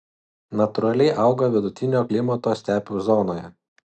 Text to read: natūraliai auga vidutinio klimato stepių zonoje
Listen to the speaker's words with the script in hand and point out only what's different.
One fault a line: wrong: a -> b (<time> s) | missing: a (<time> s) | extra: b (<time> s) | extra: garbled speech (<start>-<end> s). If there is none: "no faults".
no faults